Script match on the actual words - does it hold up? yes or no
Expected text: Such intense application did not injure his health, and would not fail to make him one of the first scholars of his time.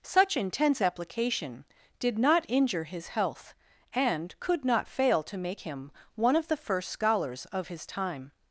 no